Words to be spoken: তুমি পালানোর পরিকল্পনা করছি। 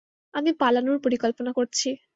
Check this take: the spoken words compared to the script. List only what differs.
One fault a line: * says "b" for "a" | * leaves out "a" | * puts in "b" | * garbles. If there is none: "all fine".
* says "আমি" for "তুমি"